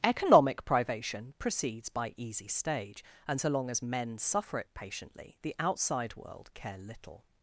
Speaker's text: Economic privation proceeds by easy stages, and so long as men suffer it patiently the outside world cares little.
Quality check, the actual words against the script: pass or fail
fail